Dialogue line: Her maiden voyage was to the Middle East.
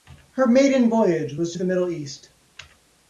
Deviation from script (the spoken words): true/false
false